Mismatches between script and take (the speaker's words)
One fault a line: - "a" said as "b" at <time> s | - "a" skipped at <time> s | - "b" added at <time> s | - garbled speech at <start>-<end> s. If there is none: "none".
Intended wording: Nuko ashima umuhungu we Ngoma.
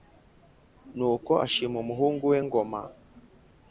none